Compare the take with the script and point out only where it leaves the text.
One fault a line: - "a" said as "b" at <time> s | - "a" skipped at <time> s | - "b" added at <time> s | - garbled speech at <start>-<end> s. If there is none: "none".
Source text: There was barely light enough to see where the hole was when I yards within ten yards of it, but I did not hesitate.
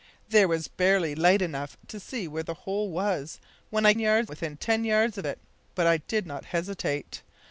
none